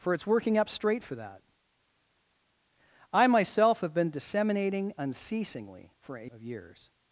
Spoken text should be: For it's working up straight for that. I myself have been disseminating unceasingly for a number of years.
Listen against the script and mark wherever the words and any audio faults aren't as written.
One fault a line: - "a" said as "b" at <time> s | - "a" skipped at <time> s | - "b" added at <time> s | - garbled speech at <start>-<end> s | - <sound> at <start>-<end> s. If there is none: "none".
- "number" skipped at 6.3 s